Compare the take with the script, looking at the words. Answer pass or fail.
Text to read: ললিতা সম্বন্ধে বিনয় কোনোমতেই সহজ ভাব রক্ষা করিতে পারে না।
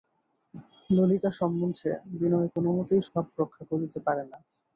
fail